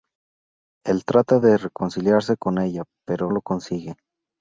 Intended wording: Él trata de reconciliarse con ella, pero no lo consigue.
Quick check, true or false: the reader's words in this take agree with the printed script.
false